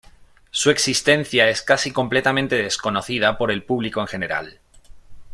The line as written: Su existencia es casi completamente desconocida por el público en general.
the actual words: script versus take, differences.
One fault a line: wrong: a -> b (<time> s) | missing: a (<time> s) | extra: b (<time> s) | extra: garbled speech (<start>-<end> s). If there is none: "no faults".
no faults